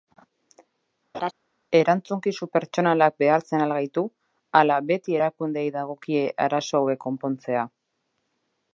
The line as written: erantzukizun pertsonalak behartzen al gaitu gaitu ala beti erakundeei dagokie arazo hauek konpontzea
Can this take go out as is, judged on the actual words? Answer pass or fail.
fail